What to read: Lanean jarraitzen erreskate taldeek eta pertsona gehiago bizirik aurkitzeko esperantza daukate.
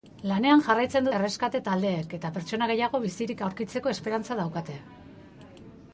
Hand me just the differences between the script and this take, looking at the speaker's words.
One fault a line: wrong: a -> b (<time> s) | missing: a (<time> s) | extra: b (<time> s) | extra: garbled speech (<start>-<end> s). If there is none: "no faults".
no faults